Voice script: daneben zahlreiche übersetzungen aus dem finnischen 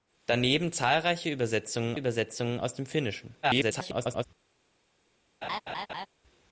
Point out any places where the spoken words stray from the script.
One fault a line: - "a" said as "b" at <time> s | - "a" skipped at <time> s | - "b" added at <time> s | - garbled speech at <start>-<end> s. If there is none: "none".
- "übersetzungen" added at 1.9 s
- garbled speech at 3.4-4.3 s